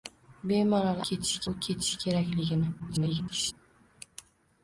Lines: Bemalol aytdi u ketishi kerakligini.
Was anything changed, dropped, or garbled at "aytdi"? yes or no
yes